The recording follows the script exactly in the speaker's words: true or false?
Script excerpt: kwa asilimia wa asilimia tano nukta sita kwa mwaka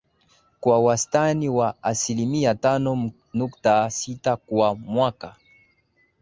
false